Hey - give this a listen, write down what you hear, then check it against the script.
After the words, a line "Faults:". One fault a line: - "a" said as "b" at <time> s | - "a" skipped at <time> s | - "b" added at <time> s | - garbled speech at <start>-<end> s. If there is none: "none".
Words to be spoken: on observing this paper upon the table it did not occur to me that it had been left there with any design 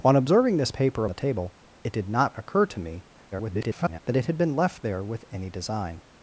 on observing this paper the table it did not occur to me [garbled] that it had been left there with any design
Faults:
- "upon" skipped at 1.0 s
- garbled speech at 3.3-4.0 s